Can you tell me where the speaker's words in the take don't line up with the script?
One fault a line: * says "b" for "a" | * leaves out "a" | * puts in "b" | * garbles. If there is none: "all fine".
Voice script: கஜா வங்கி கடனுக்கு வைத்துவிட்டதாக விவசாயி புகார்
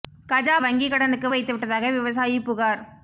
all fine